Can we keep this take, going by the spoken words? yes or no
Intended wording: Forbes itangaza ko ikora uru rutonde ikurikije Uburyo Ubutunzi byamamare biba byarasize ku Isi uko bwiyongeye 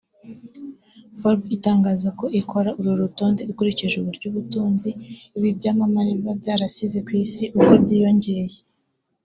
no